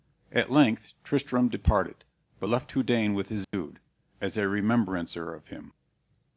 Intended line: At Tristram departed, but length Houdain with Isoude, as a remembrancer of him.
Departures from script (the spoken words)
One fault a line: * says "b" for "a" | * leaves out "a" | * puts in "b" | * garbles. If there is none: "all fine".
* puts in "length"
* says "left" for "length"